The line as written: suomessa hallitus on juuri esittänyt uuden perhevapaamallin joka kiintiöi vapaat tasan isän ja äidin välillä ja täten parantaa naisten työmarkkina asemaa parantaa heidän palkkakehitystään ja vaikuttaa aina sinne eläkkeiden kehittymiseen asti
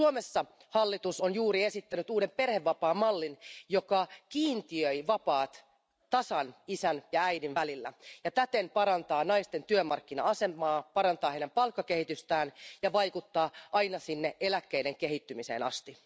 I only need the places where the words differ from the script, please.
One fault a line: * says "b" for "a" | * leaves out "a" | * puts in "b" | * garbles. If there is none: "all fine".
all fine